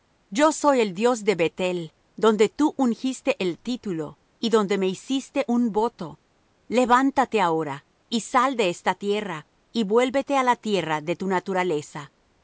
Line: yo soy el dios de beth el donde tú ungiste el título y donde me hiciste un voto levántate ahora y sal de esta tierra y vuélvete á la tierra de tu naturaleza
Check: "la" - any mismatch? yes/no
no